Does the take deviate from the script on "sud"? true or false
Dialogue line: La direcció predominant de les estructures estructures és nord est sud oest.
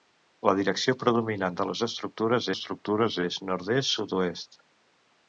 false